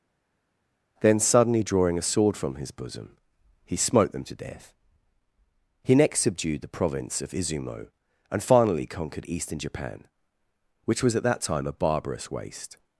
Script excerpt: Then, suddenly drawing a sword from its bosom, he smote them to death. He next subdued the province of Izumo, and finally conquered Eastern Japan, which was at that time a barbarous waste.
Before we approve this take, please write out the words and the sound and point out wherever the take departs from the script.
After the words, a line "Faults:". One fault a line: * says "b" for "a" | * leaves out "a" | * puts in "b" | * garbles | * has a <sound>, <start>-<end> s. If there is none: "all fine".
Then, suddenly drawing a sword from his bosom, he smote them to death. He next subdued the province of Izumo, and finally conquered Eastern Japan, which was at that time a barbarous waste.
Faults:
* says "his" for "its"